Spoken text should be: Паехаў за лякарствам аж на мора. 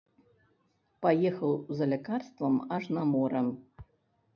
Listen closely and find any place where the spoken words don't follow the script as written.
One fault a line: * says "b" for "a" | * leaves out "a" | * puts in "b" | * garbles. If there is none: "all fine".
all fine